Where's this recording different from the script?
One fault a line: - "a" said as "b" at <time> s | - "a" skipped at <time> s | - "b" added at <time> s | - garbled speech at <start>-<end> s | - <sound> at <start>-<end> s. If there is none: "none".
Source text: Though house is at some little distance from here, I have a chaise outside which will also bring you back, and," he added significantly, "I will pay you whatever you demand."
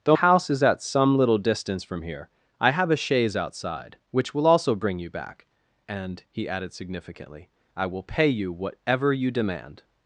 none